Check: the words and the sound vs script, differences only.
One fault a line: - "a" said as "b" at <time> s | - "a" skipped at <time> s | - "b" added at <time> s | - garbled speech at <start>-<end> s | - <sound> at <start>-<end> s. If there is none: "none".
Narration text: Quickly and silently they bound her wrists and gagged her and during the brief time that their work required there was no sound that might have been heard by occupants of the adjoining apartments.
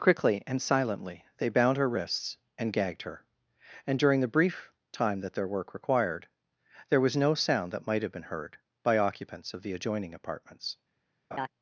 - laugh at 11.3-11.5 s